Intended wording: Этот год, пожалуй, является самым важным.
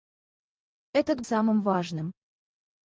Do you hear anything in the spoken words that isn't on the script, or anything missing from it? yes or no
yes